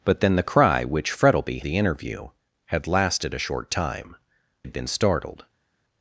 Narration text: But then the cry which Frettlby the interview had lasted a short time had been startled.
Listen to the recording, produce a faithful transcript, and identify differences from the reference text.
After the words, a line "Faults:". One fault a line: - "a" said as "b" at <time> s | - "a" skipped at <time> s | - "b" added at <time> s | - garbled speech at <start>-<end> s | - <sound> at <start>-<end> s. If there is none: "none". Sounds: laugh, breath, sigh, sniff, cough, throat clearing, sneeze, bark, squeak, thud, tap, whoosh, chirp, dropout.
But then the cry which Frettlby the interview had lasted a short time had been startled.
Faults:
none